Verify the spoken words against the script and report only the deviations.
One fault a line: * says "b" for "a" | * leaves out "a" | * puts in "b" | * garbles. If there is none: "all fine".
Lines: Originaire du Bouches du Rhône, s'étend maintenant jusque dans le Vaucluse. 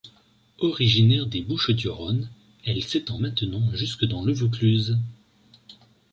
* says "des" for "du"
* puts in "elle"